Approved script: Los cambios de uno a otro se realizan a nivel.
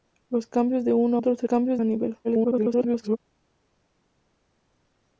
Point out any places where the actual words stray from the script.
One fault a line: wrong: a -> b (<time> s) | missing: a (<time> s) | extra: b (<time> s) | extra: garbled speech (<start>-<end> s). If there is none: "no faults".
missing: a (1.2 s)
wrong: realizan -> cambios (1.4 s)
extra: garbled speech (2.2-3.2 s)